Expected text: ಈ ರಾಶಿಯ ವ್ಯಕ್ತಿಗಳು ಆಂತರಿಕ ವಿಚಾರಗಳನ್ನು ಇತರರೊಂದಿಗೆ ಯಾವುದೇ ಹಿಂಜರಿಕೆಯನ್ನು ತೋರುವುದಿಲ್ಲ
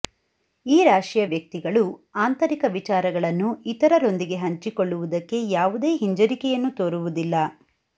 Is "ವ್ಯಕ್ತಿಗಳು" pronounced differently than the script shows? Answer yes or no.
no